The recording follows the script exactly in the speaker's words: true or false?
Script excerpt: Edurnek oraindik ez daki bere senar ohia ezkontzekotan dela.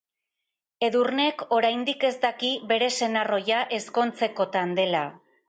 true